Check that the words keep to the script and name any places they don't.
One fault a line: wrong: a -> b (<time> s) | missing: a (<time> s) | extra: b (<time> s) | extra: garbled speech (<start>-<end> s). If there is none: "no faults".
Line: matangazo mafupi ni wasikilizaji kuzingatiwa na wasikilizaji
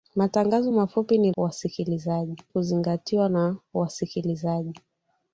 no faults